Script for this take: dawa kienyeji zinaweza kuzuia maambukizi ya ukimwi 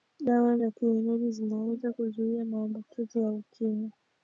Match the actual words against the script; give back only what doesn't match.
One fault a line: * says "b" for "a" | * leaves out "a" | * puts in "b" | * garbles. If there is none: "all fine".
* puts in "za"